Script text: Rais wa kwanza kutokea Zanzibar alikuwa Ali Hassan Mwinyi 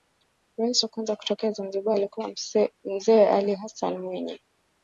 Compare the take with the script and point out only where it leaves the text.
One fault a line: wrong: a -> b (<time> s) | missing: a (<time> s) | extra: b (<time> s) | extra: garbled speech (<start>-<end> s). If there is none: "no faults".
extra: Mzee (2.8 s)